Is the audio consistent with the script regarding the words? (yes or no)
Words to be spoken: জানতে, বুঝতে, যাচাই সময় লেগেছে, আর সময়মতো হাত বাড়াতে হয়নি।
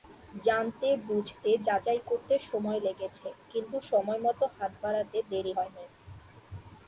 no